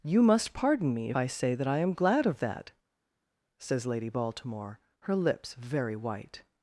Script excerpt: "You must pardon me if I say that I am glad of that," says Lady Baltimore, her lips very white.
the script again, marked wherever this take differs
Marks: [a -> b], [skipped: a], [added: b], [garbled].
"You must pardon me [skipped: if] I say that I am glad of that," says Lady Baltimore, her lips very white.